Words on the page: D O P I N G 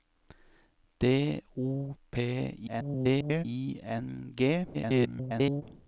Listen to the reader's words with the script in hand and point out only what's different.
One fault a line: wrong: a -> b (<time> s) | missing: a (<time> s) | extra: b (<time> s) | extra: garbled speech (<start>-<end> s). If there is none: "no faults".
extra: garbled speech (2.7-3.5 s)
extra: garbled speech (4.7-5.6 s)